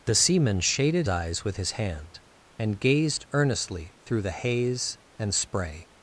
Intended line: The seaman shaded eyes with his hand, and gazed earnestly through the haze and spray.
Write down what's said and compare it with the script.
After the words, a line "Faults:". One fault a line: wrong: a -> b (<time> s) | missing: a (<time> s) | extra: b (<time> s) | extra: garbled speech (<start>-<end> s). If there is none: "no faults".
The seaman shaded eyes with his hand, and gazed earnestly through the haze and spray.
Faults:
no faults